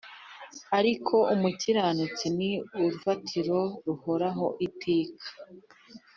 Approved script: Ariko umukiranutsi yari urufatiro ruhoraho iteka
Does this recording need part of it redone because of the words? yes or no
yes